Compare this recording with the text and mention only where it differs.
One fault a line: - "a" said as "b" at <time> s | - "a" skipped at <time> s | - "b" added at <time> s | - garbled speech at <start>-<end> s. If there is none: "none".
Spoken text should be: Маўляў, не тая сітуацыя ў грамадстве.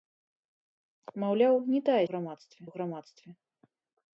- "сітуацыя" said as "грамадстве" at 2.1 s